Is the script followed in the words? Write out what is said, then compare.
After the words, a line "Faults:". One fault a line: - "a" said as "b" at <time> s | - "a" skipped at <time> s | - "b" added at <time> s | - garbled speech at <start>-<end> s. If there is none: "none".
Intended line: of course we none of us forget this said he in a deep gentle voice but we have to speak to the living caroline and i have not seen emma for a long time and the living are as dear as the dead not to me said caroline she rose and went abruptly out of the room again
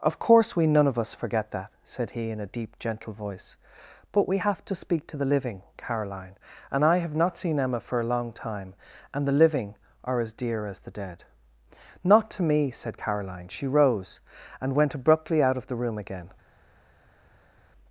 of course we none of us forget that said he in a deep gentle voice but we have to speak to the living caroline and i have not seen emma for a long time and the living are as dear as the dead not to me said caroline she rose and went abruptly out of the room again
Faults:
- "this" said as "that" at 1.5 s